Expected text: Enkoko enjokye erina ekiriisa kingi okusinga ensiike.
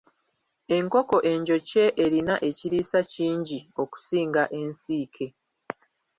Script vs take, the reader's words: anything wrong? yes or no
no